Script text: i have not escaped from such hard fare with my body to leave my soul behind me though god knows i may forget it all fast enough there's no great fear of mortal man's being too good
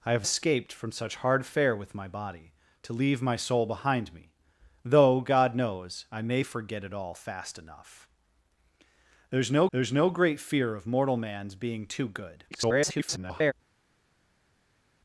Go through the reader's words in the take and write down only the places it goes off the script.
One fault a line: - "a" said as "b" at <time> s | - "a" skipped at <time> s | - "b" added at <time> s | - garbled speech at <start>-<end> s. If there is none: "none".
- "not" skipped at 0.3 s
- "there's no" added at 9.7 s
- garbled speech at 12.5-13.5 s